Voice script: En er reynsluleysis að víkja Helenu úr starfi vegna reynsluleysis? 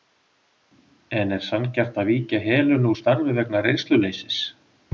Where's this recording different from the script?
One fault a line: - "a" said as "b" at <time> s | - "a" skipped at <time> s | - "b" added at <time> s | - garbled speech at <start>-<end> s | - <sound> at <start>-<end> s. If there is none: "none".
- "reynsluleysis" said as "sanngjarnt" at 1.5 s